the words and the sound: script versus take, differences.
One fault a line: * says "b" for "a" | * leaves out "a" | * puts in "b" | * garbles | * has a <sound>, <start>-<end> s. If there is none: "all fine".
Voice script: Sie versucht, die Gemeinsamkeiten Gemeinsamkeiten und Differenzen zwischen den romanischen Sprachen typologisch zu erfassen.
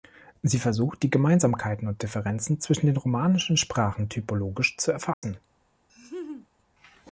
* leaves out "Gemeinsamkeiten"
* has a dropout, 5.1-5.2 s
* has a laugh, 5.9-6.5 s